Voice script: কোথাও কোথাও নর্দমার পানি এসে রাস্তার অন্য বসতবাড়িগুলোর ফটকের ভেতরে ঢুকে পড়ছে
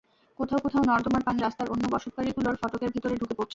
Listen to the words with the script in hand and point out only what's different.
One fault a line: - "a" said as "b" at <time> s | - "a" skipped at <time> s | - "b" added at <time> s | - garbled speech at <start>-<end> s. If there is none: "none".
- "এসে" skipped at 1.4 s